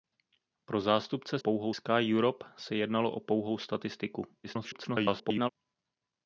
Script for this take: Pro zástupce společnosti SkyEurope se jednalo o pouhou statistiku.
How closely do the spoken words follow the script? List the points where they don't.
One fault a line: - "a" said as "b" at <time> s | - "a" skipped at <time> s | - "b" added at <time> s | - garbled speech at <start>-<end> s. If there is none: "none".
- "společnosti" said as "pouhou" at 1.4 s
- garbled speech at 4.4-5.5 s